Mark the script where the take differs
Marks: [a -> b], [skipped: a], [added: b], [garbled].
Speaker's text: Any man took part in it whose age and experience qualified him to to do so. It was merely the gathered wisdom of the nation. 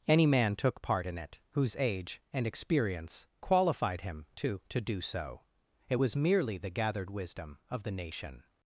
Any man took part in it whose age and experience qualified him to to do so. It was merely the gathered wisdom of the nation.